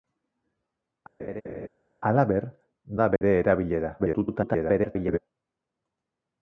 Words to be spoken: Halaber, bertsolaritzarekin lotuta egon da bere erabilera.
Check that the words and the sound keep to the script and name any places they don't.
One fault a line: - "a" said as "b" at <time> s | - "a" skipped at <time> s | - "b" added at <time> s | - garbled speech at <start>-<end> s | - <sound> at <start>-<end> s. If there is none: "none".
- laugh at 1.2-1.7 s
- "bertsolaritzarekin lotuta egon" skipped at 2.4 s
- dropout at 3.2-3.2 s
- garbled speech at 4.0-5.2 s